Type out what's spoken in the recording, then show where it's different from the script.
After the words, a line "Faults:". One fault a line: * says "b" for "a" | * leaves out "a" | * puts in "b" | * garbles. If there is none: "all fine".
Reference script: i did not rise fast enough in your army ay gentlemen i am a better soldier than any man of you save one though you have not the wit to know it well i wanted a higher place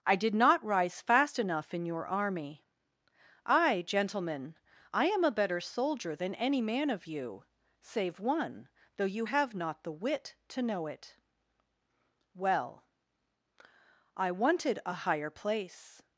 i did not rise fast enough in your army ay gentlemen i am a better soldier than any man of you save one though you have not the wit to know it well i wanted a higher place
Faults:
all fine